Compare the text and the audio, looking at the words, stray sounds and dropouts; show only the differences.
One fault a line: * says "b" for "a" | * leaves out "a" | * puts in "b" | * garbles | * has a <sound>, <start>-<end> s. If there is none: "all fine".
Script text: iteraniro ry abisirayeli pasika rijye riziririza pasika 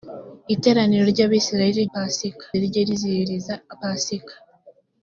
all fine